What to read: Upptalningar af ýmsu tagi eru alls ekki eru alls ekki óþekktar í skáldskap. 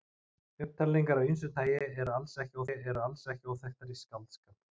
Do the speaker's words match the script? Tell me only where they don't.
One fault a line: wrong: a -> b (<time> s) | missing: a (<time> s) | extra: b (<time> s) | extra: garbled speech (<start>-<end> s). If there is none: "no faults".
no faults